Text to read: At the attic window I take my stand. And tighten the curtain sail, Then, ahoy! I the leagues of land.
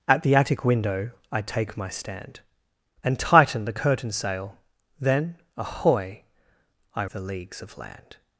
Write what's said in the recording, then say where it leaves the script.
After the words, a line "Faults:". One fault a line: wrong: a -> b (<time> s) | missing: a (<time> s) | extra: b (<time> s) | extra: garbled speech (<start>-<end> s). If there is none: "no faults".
At the attic window I take my stand. And tighten the curtain sail, Then, ahoy! I the leagues of land.
Faults:
no faults